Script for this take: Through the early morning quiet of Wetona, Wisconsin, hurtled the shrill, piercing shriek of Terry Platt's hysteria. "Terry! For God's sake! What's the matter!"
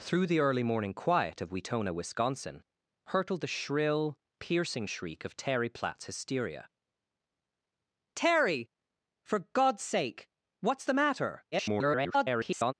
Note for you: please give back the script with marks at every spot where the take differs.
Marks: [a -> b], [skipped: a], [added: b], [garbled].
Through the early morning quiet of Wetona, Wisconsin, hurtled the shrill, piercing shriek of Terry Platt's hysteria. "Terry! For God's sake! What's the matter!" [garbled]